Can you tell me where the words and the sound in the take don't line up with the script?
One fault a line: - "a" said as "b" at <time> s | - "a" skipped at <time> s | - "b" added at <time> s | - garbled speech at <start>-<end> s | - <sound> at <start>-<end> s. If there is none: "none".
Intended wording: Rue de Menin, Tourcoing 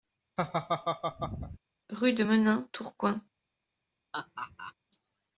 - laugh at 0.4-1.6 s
- laugh at 4.1-4.7 s